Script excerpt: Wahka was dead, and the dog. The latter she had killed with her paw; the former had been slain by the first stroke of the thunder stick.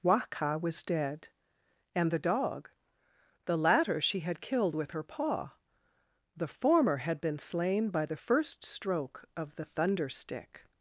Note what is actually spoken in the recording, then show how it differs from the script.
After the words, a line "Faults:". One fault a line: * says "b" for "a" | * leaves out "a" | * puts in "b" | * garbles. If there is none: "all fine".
Wahka was dead, and the dog. The latter she had killed with her paw; the former had been slain by the first stroke of the thunder stick.
Faults:
all fine